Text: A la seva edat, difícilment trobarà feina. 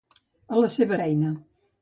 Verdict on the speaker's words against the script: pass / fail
fail